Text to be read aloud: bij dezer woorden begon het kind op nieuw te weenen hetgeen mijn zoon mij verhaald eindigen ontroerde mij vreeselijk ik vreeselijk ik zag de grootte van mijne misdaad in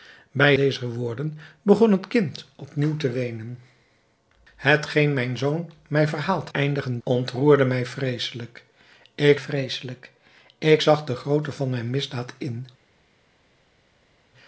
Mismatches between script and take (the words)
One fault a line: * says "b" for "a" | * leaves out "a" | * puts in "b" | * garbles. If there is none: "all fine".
all fine